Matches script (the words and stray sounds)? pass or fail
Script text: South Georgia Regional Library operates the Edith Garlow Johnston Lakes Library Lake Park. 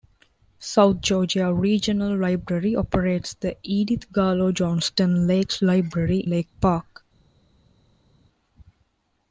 pass